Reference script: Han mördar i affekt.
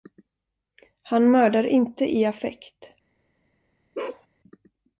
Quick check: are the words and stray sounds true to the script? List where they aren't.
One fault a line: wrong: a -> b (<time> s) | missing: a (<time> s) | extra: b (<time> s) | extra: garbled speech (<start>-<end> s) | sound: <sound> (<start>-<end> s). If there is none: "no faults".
extra: inte (1.6 s)
sound: bark (3.9-4.3 s)